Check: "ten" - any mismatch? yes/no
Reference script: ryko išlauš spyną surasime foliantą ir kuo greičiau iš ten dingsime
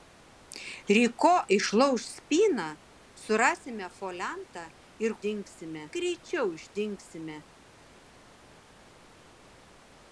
yes